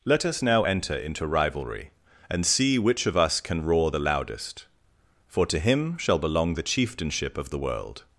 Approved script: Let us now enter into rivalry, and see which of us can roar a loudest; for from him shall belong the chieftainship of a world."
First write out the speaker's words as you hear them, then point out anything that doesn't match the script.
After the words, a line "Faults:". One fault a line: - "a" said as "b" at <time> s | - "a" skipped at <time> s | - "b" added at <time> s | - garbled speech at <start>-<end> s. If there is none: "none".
Let us now enter into rivalry, and see which of us can roar the loudest; for to him shall belong the chieftainship of the world."
Faults:
- "a" said as "the" at 3.9 s
- "from" said as "to" at 5.5 s
- "a" said as "the" at 7.5 s